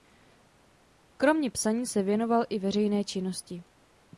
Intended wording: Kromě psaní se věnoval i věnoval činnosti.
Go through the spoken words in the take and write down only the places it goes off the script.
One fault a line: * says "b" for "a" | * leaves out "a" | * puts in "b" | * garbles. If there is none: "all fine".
* says "veřejné" for "věnoval"